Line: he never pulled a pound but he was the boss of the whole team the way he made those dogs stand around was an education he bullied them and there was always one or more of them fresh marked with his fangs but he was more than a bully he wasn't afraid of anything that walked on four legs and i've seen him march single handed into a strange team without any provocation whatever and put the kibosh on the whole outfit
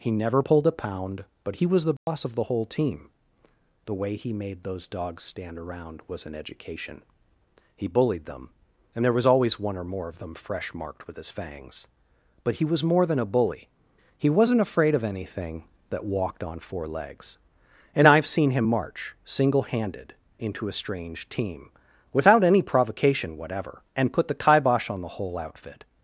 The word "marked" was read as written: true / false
true